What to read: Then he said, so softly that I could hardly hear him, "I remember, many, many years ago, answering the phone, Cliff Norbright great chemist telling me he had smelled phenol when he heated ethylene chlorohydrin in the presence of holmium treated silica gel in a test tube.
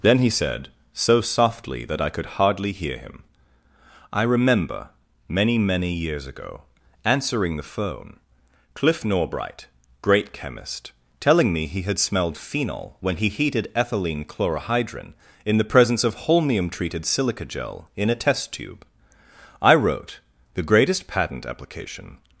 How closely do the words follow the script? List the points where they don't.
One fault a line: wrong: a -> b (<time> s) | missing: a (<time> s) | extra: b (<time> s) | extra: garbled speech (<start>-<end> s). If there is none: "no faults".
extra: I wrote the greatest patent application (19.6 s)